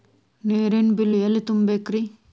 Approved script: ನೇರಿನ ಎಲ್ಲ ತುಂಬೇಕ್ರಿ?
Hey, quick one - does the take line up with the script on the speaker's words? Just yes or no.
no